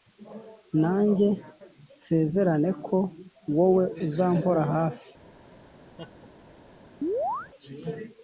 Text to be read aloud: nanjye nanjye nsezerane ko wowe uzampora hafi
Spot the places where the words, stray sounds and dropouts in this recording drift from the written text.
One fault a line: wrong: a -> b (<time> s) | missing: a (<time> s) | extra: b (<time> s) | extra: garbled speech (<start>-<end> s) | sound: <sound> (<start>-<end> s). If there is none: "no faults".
missing: nanjye (1.3 s)
sound: laugh (6.0-6.3 s)
sound: chirp (7.0-7.5 s)